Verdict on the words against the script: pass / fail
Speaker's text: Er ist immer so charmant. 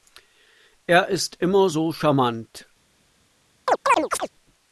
pass